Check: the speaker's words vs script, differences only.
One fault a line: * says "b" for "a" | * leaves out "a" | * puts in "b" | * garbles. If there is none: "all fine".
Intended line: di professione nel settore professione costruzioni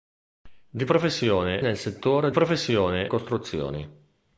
all fine